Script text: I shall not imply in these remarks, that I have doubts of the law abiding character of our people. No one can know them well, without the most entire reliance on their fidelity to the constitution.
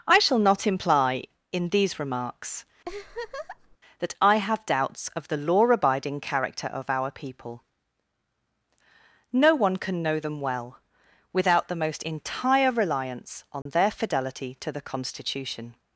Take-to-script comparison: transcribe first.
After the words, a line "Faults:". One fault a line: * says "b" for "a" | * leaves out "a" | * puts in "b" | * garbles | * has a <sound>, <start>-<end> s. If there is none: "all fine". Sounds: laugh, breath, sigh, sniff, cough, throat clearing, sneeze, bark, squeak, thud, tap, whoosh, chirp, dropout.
I shall not imply in these remarks, that I have doubts of the law abiding character of our people. No one can know them well, without the most entire reliance on their fidelity to the constitution.
Faults:
* has a laugh, 2.8-3.8 s
* has a dropout, 13.6-13.7 s